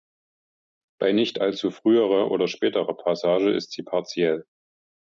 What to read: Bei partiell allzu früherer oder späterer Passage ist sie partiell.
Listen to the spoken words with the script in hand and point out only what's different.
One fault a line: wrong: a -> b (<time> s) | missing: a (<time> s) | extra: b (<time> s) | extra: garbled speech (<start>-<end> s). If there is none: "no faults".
wrong: partiell -> nicht (1.1 s)